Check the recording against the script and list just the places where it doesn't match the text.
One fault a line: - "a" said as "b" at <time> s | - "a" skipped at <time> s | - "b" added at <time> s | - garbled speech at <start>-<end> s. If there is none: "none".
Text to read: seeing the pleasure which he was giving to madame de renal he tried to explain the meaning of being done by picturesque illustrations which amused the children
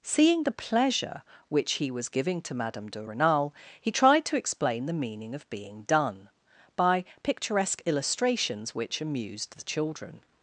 none